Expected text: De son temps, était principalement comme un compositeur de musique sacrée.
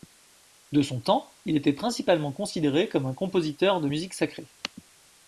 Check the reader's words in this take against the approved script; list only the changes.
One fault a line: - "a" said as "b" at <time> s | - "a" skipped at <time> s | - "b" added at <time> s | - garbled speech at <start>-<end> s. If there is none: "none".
- "il" added at 1.4 s
- "considéré" added at 2.3 s